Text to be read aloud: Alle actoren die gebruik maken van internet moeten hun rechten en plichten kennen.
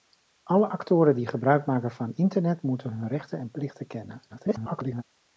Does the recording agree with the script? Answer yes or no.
no